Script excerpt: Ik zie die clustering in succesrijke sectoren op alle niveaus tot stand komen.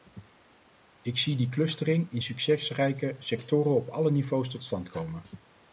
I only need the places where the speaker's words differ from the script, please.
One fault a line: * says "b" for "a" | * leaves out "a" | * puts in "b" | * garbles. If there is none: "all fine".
all fine